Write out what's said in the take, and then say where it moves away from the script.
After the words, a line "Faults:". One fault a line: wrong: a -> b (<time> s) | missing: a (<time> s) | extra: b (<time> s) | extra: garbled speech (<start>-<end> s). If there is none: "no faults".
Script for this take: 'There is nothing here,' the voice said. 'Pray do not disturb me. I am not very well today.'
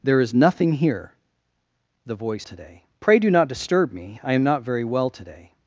'There is nothing here,' the voice today. 'Pray do not disturb me. I am not very well today.'
Faults:
wrong: said -> today (2.4 s)